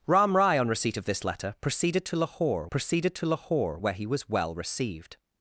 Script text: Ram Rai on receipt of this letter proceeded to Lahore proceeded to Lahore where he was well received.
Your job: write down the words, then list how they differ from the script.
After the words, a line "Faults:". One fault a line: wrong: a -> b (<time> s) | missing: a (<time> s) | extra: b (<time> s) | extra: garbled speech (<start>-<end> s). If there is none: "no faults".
Ram Rai on receipt of this letter proceeded to Lahore proceeded to Lahore where he was well received.
Faults:
no faults